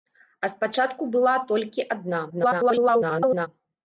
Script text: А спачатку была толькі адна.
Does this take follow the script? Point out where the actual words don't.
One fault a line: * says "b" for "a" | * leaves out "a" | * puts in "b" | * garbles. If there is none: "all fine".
* garbles